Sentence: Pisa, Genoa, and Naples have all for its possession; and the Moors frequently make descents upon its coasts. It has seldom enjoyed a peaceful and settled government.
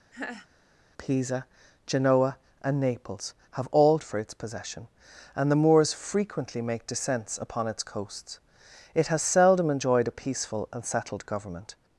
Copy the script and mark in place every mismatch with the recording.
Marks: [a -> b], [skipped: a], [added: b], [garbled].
Pisa, Genoa, and Naples have all for its possession; and the Moors frequently make descents upon its coasts. It has seldom enjoyed a peaceful and settled government.